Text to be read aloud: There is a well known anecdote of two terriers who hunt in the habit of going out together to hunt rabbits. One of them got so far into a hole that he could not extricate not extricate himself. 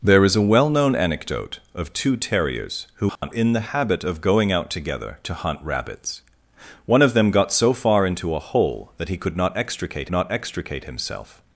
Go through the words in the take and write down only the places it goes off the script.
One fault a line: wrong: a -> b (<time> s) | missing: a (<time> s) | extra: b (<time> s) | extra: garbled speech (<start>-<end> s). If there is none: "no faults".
no faults